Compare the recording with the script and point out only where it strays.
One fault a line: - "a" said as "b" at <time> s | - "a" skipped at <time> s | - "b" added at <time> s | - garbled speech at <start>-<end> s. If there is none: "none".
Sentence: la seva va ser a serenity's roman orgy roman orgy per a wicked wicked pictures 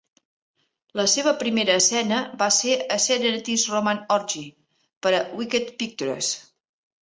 - "primera escena" added at 1.4 s
- "roman orgy" skipped at 4.5 s
- "wicked" skipped at 5.8 s